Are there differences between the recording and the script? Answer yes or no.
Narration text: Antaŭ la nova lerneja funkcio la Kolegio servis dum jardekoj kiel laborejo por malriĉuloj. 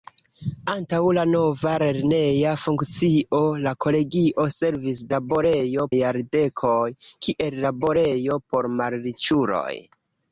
yes